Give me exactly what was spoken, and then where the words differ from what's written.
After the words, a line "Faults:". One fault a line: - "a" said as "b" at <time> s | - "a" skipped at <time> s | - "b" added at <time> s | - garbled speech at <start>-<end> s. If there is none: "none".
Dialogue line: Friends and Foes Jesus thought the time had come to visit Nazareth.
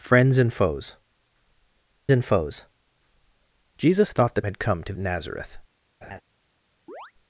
Friends and Foes and Foes Jesus thought the had come to Nazareth.
Faults:
- "and Foes" added at 2.1 s
- "time" skipped at 4.4 s
- "visit" skipped at 4.9 s